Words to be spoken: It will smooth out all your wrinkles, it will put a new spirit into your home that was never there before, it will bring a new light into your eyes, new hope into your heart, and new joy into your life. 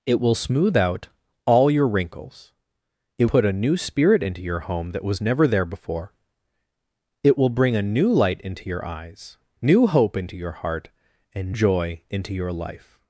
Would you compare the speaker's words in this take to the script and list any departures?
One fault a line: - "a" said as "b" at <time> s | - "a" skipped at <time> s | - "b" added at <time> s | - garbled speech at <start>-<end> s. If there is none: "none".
- "will" skipped at 3.2 s
- "new" skipped at 11.6 s